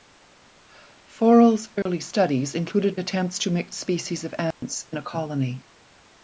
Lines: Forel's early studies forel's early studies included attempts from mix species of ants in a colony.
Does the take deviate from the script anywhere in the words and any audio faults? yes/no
yes